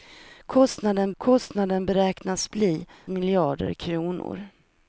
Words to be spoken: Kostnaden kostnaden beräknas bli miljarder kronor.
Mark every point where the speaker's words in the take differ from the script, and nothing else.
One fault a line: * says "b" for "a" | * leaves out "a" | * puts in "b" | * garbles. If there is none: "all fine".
all fine